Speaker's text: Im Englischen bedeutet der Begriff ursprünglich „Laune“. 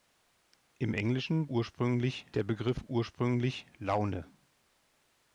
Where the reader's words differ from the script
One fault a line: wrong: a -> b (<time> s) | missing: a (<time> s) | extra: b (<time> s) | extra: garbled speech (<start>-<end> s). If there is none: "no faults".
wrong: bedeutet -> ursprünglich (1.5 s)